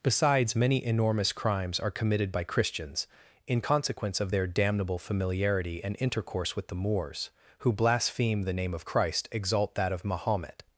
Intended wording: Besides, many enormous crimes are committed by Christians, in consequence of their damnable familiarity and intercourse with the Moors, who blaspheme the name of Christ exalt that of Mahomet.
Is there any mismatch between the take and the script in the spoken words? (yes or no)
no